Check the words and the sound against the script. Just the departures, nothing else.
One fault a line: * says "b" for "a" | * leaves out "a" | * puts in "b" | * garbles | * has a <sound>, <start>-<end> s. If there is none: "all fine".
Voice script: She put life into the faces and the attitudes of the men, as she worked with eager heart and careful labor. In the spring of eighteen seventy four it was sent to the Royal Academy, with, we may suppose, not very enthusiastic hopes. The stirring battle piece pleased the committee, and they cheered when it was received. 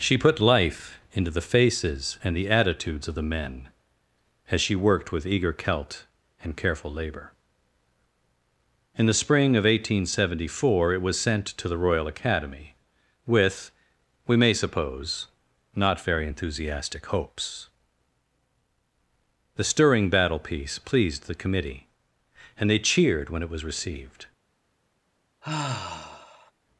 * says "celt" for "heart"
* has a sigh, 25.4-26.5 s